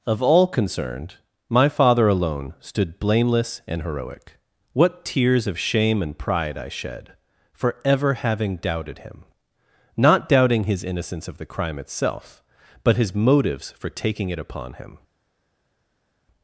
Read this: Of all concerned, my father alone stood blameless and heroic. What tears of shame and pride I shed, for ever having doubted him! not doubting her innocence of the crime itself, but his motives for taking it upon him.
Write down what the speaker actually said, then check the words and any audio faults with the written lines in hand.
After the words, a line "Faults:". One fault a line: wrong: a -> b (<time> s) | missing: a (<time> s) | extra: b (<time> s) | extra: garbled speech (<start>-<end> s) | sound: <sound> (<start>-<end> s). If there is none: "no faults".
Of all concerned, my father alone stood blameless and heroic. What tears of shame and pride I shed, for ever having doubted him! not doubting his innocence of the crime itself, but his motives for taking it upon him.
Faults:
wrong: her -> his (10.6 s)